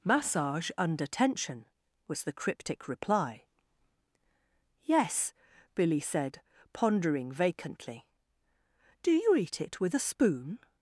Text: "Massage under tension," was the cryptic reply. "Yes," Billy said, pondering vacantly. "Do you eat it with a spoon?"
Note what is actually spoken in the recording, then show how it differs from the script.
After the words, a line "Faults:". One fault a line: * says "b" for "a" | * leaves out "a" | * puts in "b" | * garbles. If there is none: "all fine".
"Massage under tension," was the cryptic reply. "Yes," Billy said, pondering vacantly. "Do you eat it with a spoon?"
Faults:
all fine